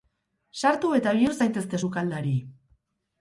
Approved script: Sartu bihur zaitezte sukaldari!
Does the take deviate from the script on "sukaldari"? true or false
false